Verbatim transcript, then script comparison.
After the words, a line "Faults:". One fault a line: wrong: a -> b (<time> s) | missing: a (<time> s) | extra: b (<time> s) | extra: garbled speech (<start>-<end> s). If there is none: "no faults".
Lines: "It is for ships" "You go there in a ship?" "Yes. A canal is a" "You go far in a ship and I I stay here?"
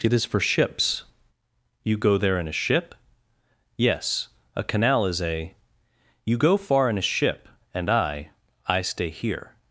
"It is for ships" "You go there in a ship?" "Yes. A canal is a" "You go far in a ship and I I stay here?"
Faults:
no faults